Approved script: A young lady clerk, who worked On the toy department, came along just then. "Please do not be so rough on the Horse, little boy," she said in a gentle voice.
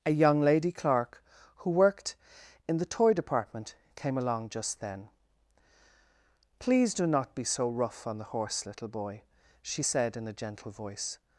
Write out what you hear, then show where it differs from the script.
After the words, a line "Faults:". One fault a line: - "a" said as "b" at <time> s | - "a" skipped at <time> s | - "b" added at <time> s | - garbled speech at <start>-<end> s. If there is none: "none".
A young lady clerk, who worked In the toy department, came along just then. "Please do not be so rough on the Horse, little boy," she said in a gentle voice.
Faults:
- "On" said as "In" at 2.7 s